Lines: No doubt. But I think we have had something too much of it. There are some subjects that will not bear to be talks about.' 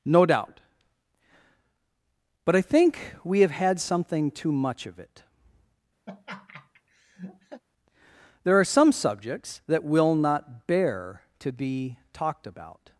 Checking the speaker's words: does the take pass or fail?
fail